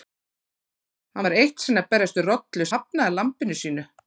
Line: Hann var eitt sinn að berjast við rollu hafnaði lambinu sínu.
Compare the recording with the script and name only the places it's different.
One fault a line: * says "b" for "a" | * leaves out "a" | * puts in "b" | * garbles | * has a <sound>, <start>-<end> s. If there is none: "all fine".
all fine